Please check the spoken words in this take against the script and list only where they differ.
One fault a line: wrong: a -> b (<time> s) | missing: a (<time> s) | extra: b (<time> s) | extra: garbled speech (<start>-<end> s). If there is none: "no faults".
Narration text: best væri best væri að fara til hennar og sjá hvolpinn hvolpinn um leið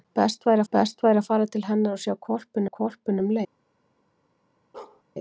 no faults